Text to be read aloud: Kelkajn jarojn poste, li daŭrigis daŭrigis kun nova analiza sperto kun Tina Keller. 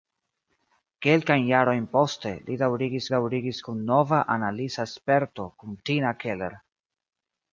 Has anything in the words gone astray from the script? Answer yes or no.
no